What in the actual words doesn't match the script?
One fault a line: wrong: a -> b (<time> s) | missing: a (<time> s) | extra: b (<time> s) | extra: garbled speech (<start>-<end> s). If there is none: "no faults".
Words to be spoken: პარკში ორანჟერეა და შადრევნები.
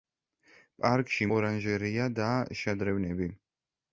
no faults